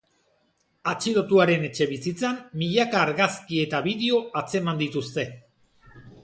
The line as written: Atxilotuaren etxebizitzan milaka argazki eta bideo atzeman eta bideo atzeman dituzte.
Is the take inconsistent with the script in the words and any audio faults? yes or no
yes